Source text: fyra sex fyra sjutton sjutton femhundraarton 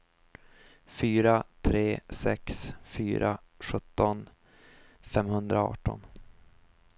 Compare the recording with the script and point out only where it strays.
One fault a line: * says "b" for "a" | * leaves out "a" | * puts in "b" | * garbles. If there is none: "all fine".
* puts in "tre"
* leaves out "sjutton"